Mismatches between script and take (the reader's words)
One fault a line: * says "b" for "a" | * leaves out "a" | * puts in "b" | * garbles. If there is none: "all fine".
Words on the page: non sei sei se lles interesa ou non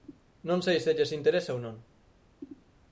* leaves out "sei"